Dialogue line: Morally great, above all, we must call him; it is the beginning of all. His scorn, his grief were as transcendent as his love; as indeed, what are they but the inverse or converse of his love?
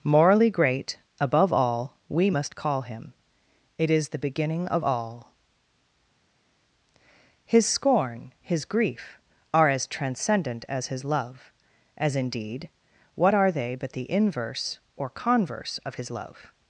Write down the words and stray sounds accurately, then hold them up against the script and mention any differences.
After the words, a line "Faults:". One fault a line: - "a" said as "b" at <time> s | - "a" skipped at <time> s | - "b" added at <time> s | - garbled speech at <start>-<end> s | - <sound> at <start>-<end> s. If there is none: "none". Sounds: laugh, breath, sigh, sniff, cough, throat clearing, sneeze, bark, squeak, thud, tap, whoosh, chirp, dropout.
Morally great, above all, we must call him; it is the beginning of all. His scorn, his grief are as transcendent as his love; as indeed, what are they but the inverse or converse of his love?
Faults:
- "were" said as "are" at 9.5 s